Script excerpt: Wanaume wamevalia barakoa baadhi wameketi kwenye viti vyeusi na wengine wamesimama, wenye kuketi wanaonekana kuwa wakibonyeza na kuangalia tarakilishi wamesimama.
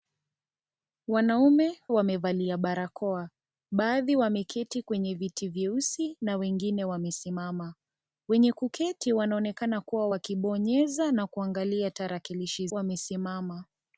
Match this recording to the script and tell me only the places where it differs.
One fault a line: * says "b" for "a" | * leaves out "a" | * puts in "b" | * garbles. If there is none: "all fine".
all fine